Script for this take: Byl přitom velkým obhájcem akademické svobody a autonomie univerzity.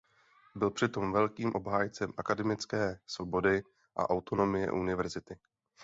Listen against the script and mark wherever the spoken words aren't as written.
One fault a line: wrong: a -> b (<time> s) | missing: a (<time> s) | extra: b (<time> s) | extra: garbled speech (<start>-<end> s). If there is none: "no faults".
no faults